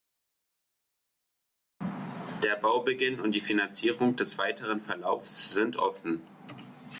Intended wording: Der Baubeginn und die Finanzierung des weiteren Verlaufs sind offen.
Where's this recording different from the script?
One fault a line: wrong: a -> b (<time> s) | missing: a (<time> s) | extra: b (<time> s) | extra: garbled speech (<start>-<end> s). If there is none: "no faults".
no faults